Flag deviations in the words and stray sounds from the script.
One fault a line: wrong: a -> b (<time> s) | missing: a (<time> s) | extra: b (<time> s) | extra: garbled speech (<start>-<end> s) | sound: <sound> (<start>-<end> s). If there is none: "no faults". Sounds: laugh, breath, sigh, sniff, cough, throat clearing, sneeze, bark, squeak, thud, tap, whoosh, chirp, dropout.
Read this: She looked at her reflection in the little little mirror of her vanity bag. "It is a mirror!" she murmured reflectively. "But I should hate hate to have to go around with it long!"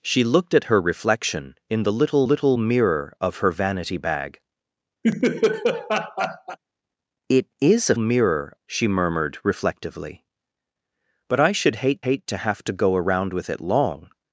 sound: laugh (5.0-6.6 s)